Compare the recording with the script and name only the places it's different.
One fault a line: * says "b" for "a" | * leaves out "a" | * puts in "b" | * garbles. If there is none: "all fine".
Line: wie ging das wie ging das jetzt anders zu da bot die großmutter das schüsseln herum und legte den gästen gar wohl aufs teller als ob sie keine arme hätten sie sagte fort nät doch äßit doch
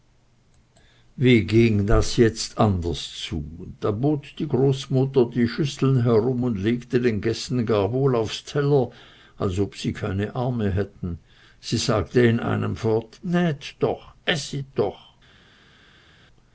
* leaves out "wie ging das"
* says "die" for "das"
* puts in "in einem"